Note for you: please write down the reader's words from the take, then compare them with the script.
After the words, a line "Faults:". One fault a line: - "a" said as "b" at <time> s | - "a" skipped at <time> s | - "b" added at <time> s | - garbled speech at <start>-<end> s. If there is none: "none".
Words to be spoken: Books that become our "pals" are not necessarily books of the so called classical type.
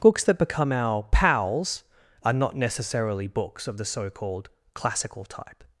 Books that become our "pals" are not necessarily books of the so called classical type.
Faults:
none